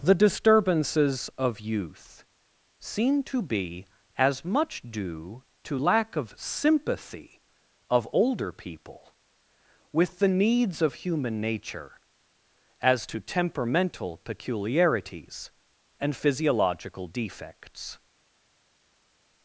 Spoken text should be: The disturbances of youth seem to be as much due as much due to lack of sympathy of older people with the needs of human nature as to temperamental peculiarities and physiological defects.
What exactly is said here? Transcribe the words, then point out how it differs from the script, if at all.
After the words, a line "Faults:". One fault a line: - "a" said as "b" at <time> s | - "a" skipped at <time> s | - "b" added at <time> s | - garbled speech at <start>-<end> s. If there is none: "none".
The disturbances of youth seem to be as much due to lack of sympathy of older people with the needs of human nature as to temperamental peculiarities and physiological defects.
Faults:
- "as much due" skipped at 5.4 s